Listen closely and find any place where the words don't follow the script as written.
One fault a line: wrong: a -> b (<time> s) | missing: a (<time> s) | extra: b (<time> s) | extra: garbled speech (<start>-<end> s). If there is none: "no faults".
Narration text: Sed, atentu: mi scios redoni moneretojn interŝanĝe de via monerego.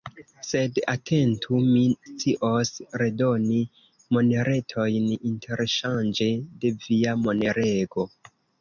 no faults